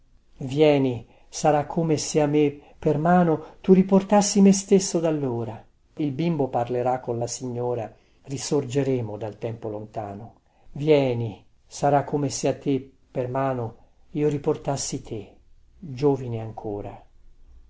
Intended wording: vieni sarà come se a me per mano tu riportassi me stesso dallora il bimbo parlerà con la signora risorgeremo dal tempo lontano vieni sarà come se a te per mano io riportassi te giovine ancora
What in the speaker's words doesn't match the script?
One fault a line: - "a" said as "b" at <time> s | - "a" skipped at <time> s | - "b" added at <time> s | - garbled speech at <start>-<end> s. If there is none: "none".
none